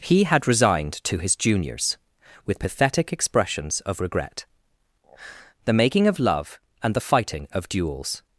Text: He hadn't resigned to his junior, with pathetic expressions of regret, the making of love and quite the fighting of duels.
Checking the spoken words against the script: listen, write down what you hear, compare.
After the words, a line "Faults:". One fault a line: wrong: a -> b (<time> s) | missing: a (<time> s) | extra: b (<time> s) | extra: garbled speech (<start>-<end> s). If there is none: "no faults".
He had resigned to his juniors, with pathetic expressions of regret, the making of love and the fighting of duels.
Faults:
wrong: hadn't -> had (0.2 s)
wrong: junior -> juniors (1.4 s)
missing: quite (7.0 s)